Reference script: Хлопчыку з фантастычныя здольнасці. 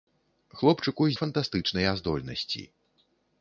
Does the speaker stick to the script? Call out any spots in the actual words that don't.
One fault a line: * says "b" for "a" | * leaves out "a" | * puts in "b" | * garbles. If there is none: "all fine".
all fine